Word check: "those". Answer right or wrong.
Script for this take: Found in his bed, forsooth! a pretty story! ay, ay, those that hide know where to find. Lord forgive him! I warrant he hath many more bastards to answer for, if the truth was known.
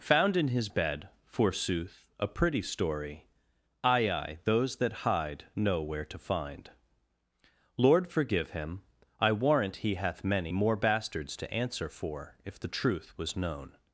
right